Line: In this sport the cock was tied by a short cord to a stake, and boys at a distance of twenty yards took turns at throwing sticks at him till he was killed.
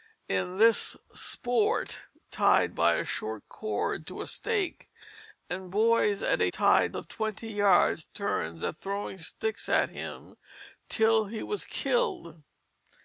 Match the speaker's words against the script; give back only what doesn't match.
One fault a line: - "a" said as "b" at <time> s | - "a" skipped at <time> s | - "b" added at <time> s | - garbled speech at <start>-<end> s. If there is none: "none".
- "the cock was" skipped at 2.1 s
- "distance" said as "tied" at 6.5 s
- "took" skipped at 8.0 s